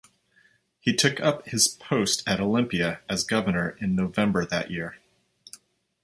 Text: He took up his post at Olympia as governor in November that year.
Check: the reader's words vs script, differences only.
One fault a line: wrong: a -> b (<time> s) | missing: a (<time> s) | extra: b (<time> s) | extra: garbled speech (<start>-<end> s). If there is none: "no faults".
no faults